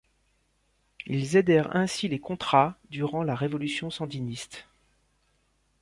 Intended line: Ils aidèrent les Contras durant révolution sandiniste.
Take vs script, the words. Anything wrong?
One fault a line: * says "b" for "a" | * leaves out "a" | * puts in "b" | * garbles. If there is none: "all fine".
* puts in "ainsi"
* puts in "la"